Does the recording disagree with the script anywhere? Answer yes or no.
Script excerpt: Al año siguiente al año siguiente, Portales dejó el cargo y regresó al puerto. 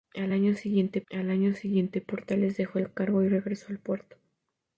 no